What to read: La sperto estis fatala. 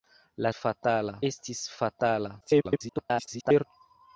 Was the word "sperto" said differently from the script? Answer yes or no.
yes